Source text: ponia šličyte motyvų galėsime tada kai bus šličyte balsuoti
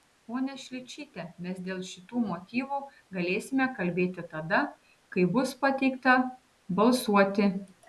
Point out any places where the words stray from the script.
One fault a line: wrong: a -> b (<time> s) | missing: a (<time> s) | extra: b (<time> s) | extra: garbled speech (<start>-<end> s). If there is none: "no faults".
extra: mes dėl šitų (1.4 s)
extra: kalbėti (3.8 s)
wrong: šličyte -> pateikta (5.7 s)